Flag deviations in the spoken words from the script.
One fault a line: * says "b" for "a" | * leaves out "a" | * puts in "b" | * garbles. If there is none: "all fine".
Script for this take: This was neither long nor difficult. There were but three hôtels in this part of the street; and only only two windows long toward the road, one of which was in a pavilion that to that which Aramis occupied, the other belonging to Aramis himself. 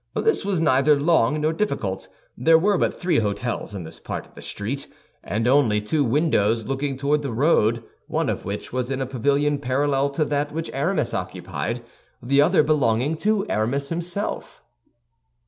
* leaves out "only"
* says "looking" for "long"
* says "parallel" for "that"